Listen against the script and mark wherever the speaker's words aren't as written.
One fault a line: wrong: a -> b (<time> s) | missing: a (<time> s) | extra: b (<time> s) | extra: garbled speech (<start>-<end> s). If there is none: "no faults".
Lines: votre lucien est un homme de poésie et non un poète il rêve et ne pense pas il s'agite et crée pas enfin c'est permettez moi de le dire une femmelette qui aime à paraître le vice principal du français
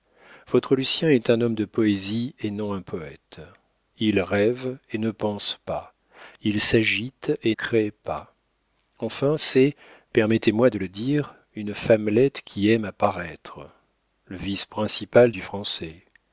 no faults